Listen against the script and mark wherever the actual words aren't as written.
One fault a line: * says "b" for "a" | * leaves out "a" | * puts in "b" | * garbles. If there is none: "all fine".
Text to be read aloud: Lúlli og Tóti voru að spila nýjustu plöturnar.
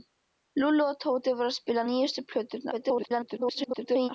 * garbles